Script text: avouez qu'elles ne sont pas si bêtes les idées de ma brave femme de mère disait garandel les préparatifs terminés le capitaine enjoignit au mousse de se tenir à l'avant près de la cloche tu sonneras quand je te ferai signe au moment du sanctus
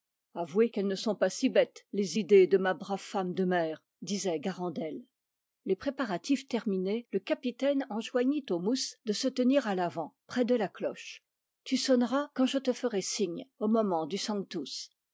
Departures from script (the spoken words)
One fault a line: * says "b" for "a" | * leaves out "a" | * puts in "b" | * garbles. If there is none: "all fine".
all fine